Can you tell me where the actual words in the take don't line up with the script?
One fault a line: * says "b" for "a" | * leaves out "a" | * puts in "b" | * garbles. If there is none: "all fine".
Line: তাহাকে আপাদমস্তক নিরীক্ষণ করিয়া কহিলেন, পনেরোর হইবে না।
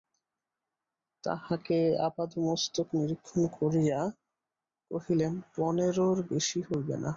* puts in "বেশি"